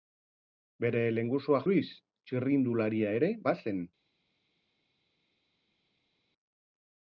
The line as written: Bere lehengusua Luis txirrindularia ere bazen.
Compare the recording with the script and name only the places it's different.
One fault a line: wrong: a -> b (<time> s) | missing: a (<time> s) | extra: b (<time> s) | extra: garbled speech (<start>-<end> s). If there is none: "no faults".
no faults